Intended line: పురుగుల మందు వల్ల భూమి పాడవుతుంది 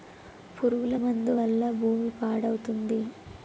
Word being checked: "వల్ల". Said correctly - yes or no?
yes